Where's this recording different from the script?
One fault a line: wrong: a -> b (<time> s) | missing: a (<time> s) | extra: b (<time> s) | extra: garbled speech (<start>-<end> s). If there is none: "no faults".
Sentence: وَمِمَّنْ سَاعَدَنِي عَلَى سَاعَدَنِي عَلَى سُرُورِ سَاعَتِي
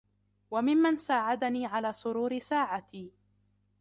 missing: سَاعَدَنِي عَلَى (1.9 s)